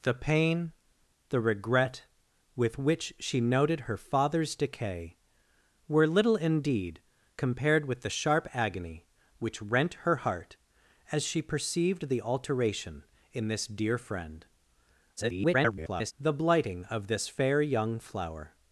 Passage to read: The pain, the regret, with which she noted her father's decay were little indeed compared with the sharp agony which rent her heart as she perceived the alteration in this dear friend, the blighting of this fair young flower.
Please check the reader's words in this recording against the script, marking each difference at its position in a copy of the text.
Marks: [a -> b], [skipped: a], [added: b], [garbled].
The pain, the regret, with which she noted her father's decay were little indeed compared with the sharp agony which rent her heart as she perceived the alteration in this dear friend, [garbled] the blighting of this fair young flower.